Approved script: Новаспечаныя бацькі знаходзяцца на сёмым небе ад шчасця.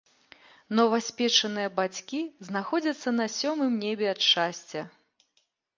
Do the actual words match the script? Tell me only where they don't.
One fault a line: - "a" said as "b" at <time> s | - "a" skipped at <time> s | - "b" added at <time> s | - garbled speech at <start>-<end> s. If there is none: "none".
none